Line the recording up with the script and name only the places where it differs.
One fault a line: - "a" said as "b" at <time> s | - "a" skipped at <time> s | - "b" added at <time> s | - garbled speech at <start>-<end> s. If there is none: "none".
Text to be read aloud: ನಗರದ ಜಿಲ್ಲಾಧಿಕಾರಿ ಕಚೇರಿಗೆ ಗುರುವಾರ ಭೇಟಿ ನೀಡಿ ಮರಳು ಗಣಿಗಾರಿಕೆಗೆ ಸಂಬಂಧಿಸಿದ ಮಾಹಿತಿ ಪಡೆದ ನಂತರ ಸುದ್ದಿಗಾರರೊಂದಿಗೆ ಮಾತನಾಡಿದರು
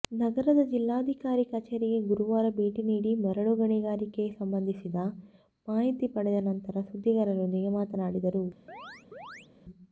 none